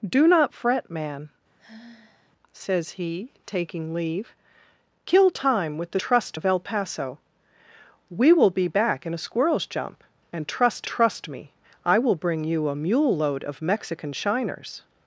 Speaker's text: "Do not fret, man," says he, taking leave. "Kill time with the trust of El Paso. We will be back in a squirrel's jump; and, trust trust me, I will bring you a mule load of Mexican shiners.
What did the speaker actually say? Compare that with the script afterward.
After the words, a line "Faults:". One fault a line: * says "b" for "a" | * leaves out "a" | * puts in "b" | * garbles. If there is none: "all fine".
"Do not fret, man," says he, taking leave. "Kill time with the trust of El Paso. We will be back in a squirrel's jump; and, trust trust me, I will bring you a mule load of Mexican shiners.
Faults:
all fine